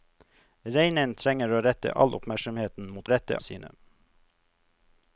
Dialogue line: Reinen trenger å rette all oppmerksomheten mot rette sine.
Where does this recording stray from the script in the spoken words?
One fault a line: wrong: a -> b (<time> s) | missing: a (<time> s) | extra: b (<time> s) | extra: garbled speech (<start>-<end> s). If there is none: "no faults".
no faults